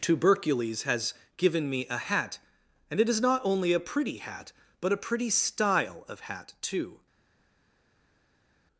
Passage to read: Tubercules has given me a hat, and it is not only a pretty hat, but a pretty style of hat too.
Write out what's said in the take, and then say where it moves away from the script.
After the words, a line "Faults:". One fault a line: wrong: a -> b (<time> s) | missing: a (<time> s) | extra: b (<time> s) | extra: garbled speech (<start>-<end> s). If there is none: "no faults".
Tubercules has given me a hat, and it is not only a pretty hat, but a pretty style of hat too.
Faults:
no faults